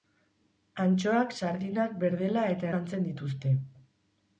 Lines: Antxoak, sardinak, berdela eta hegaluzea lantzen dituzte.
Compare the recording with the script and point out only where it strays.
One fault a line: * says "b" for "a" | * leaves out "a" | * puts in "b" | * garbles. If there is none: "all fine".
* leaves out "hegaluzea"